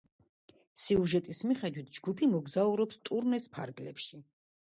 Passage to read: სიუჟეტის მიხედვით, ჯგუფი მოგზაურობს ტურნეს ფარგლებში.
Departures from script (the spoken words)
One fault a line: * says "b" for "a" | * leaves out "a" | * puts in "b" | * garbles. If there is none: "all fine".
all fine